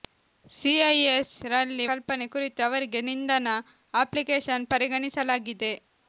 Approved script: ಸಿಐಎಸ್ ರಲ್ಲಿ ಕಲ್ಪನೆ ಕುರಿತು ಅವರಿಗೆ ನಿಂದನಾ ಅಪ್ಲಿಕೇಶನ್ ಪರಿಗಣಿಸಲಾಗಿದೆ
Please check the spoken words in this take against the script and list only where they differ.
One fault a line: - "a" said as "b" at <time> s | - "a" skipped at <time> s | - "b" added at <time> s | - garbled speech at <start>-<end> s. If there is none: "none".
none